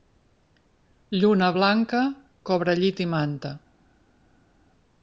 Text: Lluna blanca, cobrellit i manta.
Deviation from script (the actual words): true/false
false